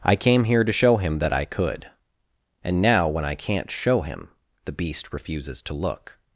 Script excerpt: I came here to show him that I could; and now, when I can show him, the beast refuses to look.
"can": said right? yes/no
no